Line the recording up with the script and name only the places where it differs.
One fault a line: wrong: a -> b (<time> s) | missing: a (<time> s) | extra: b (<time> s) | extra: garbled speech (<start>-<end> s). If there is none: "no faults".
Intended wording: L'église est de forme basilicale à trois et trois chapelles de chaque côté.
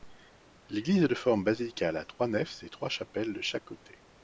extra: nefs (2.3 s)